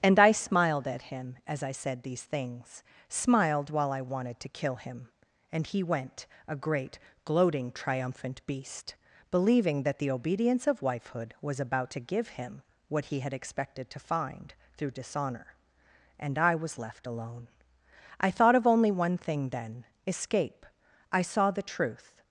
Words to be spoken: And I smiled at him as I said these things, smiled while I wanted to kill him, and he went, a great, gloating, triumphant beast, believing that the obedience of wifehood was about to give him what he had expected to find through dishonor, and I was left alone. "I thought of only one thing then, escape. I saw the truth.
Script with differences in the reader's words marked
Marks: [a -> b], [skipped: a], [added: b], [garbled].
And I smiled at him as I said these things, smiled while I wanted to kill him, and he went, a great, gloating, triumphant beast, believing that the obedience of wifehood was about to give him what he had expected to find through dishonor, and I was left alone. "I thought of only one thing then, escape. I saw the truth.